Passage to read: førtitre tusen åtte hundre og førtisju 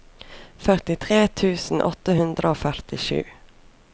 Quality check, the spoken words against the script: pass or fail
pass